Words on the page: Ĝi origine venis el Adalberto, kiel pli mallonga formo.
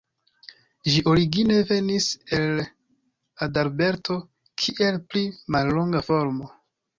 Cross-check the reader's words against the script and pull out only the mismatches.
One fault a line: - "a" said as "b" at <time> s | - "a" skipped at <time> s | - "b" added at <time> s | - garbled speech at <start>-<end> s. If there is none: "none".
none